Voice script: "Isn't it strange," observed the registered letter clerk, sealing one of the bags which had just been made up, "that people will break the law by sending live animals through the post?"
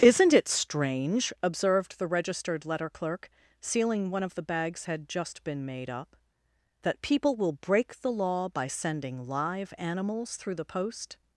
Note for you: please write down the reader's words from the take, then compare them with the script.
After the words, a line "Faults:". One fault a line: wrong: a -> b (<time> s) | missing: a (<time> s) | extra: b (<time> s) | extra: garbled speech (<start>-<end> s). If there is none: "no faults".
"Isn't it strange," observed the registered letter clerk, sealing one of the bags had just been made up, "that people will break the law by sending live animals through the post?"
Faults:
missing: which (4.8 s)